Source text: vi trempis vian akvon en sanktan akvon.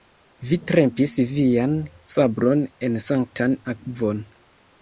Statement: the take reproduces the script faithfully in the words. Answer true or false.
false